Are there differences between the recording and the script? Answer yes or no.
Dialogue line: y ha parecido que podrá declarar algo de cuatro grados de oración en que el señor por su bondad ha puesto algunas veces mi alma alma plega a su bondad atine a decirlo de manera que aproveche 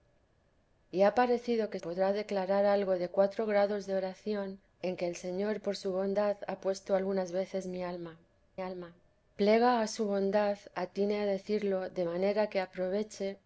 no